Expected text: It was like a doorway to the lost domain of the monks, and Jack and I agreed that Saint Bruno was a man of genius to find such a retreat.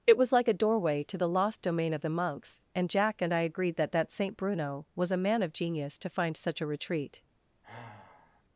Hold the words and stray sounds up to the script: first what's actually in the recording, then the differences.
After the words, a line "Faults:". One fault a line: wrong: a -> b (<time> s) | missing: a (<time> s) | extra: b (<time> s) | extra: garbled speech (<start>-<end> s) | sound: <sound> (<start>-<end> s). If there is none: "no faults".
It was like a doorway to the lost domain of the monks, and Jack and I agreed that that Saint Bruno was a man of genius to find such a retreat.
Faults:
extra: that (3.9 s)
sound: sigh (7.6-8.4 s)